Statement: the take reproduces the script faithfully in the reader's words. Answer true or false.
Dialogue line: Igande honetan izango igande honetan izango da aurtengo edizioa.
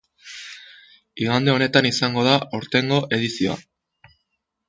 false